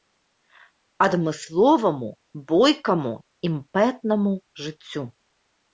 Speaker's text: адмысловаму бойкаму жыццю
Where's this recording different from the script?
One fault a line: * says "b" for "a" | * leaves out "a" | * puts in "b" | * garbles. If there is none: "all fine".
* puts in "імпэтнаму"